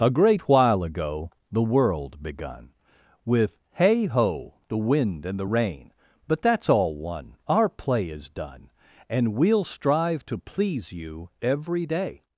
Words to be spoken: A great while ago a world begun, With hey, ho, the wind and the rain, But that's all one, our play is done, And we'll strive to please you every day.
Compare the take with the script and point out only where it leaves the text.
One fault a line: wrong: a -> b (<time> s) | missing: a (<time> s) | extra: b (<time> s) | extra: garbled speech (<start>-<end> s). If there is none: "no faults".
wrong: a -> the (1.5 s)